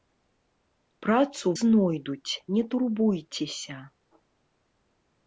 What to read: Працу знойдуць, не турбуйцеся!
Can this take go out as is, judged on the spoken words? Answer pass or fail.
pass